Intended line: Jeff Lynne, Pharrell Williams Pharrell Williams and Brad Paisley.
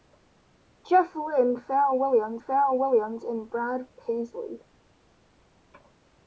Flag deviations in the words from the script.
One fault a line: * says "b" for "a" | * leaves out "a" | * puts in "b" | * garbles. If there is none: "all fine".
all fine